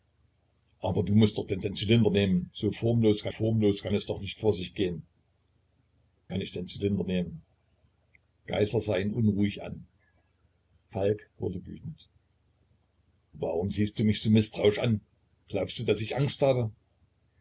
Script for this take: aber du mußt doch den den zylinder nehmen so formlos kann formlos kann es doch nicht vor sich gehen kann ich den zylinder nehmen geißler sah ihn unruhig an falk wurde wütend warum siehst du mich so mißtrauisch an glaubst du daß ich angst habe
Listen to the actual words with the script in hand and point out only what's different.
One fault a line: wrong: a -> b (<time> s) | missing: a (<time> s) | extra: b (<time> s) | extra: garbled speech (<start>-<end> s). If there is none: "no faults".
no faults